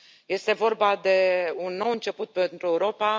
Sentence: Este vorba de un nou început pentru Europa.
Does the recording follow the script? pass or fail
pass